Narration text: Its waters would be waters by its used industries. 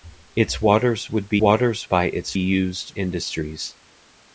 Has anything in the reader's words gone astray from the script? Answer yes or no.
no